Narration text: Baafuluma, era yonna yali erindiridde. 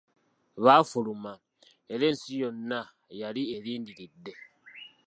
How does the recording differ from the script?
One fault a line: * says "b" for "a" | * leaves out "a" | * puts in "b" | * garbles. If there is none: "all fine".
* puts in "ensi"